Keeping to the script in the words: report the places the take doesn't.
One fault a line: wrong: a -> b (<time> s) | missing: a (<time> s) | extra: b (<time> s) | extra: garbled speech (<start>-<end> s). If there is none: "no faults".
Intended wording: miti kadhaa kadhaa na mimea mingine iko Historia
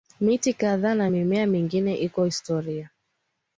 missing: kadhaa (0.9 s)